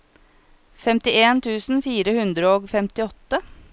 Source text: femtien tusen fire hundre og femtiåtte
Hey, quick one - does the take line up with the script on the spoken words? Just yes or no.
yes